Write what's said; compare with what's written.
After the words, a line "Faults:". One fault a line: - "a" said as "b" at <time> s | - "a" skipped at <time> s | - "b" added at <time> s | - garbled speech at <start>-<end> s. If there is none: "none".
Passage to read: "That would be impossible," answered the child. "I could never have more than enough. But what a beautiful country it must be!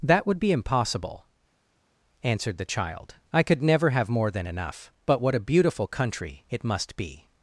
"That would be impossible," answered the child. "I could never have more than enough. But what a beautiful country it must be!
Faults:
none